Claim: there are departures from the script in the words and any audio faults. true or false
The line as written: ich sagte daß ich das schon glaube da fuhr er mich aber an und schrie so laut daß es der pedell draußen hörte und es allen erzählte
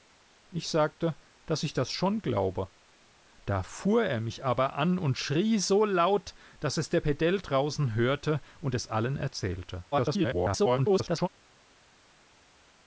true